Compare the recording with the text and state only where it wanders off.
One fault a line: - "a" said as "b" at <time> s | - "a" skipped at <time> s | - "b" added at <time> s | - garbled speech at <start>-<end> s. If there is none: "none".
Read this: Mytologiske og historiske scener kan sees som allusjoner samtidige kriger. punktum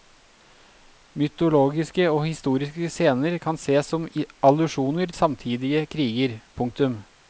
none